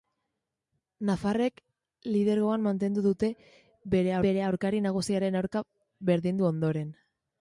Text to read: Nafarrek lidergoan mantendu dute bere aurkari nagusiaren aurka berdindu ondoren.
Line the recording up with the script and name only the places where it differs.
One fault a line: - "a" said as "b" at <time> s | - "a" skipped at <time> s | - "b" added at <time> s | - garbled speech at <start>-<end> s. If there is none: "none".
- "bere" added at 4.3 s